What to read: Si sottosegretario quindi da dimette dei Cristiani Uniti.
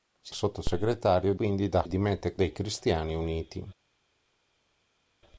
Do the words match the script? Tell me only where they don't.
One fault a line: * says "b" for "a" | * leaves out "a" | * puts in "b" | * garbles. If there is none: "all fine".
all fine